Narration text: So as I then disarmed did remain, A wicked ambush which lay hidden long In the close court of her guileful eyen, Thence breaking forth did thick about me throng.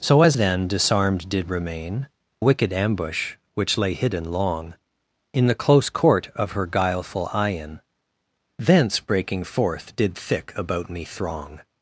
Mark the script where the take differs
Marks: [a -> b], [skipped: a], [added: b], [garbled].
So as [skipped: I] then disarmed did remain, [skipped: A] wicked ambush which lay hidden long In the close court of her guileful eyen, Thence breaking forth did thick about me throng.